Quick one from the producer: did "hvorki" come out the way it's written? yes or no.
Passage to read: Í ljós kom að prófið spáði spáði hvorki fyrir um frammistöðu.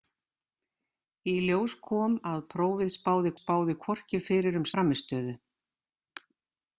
yes